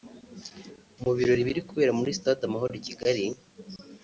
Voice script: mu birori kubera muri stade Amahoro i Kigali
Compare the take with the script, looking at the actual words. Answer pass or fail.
fail